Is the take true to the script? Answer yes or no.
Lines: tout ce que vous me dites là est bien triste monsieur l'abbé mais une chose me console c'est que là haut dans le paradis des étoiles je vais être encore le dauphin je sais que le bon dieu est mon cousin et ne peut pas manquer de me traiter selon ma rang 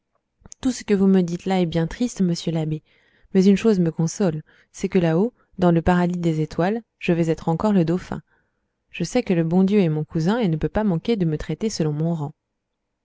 no